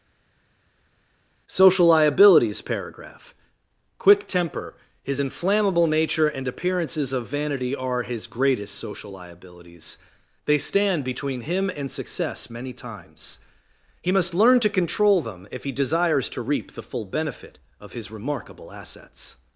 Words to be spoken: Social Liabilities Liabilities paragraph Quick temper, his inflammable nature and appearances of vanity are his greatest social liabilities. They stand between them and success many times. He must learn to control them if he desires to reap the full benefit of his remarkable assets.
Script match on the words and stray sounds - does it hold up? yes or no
no